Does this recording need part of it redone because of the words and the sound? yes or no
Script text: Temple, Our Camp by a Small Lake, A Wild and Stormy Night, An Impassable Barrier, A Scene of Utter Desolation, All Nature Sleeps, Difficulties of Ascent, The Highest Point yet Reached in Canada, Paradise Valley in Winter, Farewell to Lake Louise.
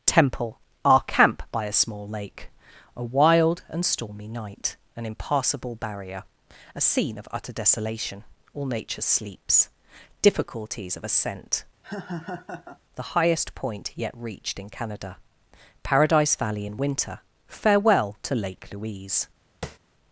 yes